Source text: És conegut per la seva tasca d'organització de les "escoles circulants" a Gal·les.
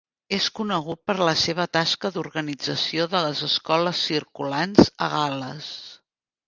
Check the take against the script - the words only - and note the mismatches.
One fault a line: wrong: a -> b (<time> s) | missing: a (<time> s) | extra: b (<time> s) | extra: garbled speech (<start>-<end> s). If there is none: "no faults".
no faults